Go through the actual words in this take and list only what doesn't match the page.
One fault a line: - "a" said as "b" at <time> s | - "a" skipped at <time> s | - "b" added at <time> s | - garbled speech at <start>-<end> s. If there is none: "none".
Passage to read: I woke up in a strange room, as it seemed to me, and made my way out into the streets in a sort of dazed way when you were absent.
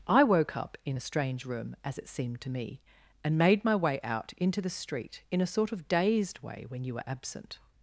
- "streets" said as "street" at 4.7 s